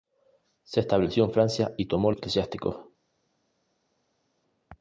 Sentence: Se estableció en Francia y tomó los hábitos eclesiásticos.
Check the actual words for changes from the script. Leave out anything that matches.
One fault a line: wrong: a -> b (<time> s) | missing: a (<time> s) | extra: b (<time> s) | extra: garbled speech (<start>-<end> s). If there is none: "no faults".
missing: los hábitos (2.1 s)